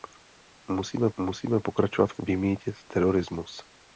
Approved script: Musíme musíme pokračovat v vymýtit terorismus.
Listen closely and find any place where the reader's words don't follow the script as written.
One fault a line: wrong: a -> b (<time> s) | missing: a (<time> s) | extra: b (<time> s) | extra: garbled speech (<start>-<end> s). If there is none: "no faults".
no faults